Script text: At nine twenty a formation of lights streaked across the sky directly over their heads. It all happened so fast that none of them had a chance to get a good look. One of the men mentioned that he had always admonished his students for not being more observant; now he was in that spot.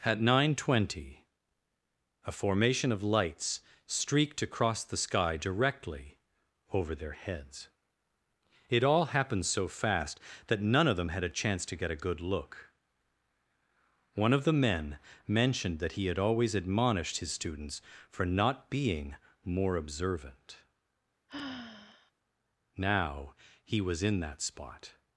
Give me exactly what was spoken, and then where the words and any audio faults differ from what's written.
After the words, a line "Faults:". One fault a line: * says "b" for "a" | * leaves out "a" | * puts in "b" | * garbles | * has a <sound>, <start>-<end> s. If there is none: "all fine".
At nine twenty a formation of lights streaked across the sky directly over their heads. It all happened so fast that none of them had a chance to get a good look. One of the men mentioned that he had always admonished his students for not being more observant; now he was in that spot.
Faults:
* has a sigh, 21.3-22.1 s